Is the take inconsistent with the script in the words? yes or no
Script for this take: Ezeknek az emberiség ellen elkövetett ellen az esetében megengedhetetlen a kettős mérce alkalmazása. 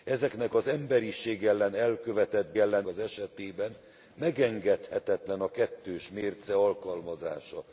no